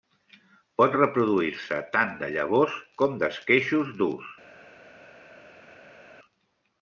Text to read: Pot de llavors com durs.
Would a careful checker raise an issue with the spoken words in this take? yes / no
yes